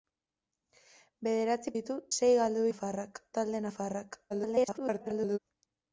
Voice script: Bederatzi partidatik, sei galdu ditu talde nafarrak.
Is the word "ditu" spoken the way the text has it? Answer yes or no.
no